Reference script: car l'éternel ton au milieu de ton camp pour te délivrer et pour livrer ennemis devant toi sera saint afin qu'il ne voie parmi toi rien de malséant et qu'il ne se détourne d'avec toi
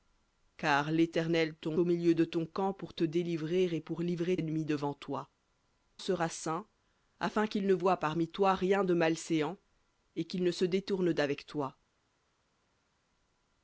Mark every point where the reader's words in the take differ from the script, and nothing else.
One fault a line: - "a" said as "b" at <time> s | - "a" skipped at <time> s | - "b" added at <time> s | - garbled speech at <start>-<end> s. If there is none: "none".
none